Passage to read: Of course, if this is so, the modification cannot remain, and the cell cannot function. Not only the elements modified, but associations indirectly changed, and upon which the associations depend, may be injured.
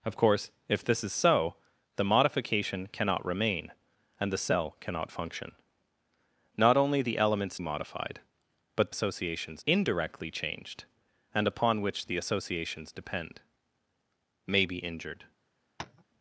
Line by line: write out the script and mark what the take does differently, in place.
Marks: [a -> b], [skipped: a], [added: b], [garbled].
Of course, if this is so, the modification cannot remain, and the cell cannot function. Not only the elements modified, but associations indirectly changed, and upon which the associations depend, may be injured.